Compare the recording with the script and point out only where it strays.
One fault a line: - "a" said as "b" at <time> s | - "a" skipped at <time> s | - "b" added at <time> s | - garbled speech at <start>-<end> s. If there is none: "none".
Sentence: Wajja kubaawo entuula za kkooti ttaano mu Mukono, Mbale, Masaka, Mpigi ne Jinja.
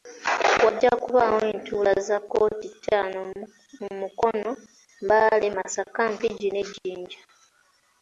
none